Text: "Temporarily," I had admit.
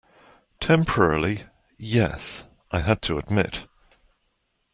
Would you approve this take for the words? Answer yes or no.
no